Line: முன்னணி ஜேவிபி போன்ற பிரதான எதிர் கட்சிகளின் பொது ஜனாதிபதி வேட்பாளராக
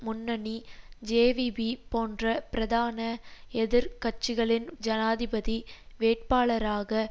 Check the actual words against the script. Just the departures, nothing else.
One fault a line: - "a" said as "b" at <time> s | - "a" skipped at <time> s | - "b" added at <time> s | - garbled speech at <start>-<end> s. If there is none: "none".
- "பொது" skipped at 4.7 s